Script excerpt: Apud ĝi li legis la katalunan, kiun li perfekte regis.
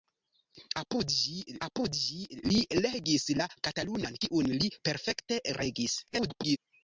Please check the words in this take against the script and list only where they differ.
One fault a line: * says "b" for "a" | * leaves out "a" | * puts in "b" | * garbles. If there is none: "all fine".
* puts in "apud ĝi"
* garbles